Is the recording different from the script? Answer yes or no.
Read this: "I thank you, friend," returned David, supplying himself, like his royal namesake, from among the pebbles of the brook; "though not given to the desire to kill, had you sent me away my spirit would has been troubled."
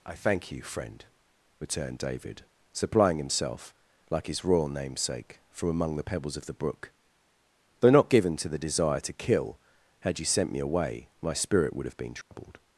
yes